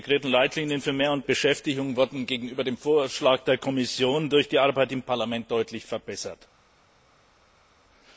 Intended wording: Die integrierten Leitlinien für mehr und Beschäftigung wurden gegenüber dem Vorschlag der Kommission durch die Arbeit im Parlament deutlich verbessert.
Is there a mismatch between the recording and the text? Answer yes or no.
no